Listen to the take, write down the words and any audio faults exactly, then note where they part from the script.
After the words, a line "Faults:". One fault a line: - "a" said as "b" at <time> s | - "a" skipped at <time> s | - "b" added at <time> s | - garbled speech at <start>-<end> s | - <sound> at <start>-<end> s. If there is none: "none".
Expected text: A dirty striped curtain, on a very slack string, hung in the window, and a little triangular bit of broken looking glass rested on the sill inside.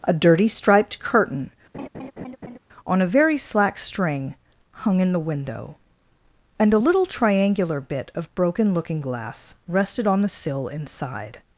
A dirty striped curtain, on a very slack string, hung in the window, and a little triangular bit of broken looking glass rested on the sill inside.
Faults:
- laugh at 1.7-2.6 s